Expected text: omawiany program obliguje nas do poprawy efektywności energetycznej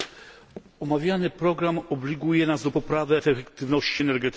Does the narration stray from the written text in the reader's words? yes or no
no